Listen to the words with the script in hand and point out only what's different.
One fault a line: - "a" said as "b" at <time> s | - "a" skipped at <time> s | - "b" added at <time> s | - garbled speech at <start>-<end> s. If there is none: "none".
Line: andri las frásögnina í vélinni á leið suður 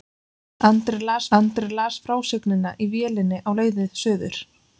- "andri las" added at 1.4 s